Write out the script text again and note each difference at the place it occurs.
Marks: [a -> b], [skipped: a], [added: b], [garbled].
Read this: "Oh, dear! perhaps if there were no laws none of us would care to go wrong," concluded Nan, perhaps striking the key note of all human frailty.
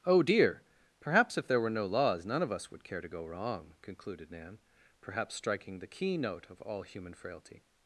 "Oh, dear! perhaps if there were no laws none of us would care to go wrong," concluded Nan, perhaps striking the key note of all human frailty.